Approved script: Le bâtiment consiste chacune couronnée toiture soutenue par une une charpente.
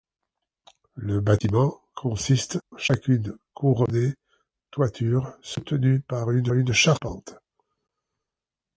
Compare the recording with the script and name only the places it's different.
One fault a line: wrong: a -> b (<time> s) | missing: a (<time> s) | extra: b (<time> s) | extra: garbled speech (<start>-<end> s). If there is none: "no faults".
no faults